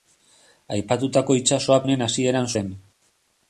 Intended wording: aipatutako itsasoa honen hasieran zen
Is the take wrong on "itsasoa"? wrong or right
right